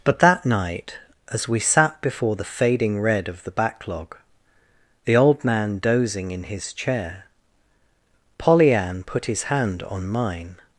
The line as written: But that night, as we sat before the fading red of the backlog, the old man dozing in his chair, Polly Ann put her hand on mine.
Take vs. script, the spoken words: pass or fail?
fail